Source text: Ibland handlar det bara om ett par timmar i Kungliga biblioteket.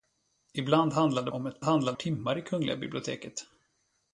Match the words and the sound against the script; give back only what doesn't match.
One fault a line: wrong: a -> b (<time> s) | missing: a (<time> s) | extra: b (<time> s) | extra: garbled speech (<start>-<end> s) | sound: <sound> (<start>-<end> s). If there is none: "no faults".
missing: bara (1.3 s)
wrong: par -> handlar (1.6 s)